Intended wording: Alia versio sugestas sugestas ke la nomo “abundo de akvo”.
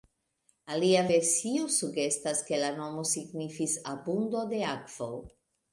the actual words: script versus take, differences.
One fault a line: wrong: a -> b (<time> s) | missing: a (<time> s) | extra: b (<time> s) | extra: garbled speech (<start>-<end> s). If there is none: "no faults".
missing: sugestas (2.4 s)
extra: signifis (3.1 s)